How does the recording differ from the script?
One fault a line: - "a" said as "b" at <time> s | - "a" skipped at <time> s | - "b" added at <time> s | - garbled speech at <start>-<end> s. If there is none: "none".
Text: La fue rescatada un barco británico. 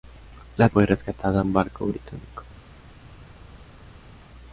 none